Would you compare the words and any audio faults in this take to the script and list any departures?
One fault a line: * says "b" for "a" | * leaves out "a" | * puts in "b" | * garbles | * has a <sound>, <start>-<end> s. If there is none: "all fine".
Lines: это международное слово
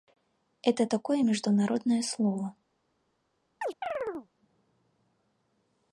* puts in "такое"
* has a chirp, 3.6-4.3 s